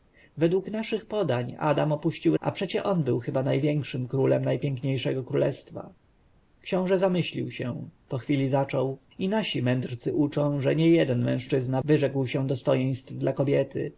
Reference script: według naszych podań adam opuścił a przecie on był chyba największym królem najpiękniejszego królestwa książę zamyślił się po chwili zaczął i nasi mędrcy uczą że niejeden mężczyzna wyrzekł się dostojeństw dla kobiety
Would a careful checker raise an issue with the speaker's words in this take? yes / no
no